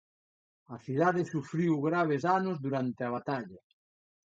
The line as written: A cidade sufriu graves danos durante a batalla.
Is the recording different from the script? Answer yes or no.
no